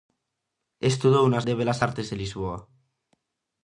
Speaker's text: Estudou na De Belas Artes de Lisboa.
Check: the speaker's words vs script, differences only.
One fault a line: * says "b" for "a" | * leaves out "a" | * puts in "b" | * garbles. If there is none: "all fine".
all fine